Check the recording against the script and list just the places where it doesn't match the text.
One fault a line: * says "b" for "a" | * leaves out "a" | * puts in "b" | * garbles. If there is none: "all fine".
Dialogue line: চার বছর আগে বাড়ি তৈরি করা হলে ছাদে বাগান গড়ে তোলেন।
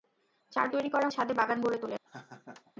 * leaves out "বছর আগে বাড়ি"
* leaves out "হলে"